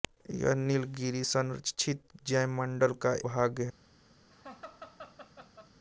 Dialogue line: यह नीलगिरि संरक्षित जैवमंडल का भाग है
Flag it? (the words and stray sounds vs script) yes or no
yes